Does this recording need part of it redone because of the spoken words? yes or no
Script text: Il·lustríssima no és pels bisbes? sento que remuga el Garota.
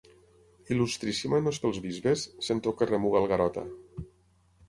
no